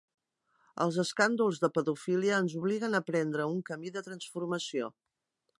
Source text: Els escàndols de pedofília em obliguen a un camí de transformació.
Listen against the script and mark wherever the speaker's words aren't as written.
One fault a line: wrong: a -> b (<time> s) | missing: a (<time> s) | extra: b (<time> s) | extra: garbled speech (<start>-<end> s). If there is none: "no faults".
wrong: em -> ens (2.5 s)
extra: prendre (3.1 s)